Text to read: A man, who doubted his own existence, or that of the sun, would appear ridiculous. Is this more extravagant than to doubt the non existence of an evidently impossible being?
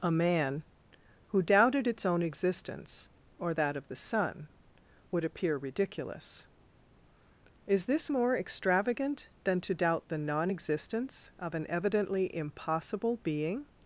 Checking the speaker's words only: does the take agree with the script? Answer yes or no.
no